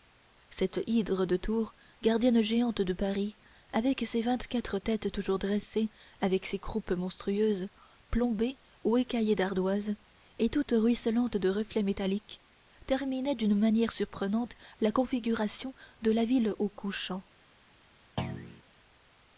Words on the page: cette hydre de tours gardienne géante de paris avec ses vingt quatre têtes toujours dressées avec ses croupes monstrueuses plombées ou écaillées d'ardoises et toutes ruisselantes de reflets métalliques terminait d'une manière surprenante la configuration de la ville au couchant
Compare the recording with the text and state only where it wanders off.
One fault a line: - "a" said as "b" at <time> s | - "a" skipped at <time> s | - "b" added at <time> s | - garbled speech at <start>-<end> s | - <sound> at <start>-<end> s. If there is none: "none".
- thud at 18.2-18.6 s